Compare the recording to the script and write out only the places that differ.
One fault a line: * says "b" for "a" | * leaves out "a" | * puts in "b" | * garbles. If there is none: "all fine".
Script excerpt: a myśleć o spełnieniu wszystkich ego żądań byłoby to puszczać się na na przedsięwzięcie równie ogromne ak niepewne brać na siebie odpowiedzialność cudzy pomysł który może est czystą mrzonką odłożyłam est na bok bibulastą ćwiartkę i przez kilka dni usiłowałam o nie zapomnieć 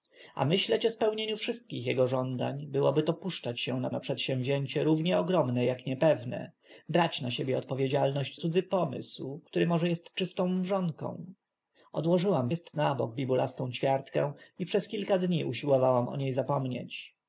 all fine